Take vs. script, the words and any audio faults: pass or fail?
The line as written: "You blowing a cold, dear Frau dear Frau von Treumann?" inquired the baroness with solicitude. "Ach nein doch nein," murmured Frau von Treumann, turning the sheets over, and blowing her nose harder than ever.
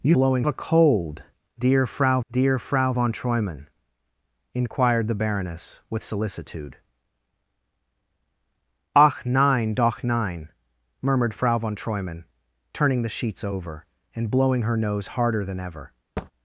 fail